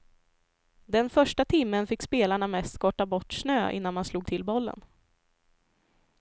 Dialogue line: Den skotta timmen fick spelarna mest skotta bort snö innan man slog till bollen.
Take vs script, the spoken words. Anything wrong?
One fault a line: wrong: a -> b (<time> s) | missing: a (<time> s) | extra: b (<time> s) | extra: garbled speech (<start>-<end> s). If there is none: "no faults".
wrong: skotta -> första (1.1 s)